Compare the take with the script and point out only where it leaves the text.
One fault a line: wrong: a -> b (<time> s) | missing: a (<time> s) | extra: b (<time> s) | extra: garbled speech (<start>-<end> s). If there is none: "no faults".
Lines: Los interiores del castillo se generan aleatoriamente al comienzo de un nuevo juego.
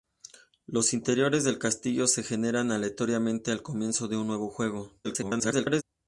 extra: garbled speech (5.0-5.8 s)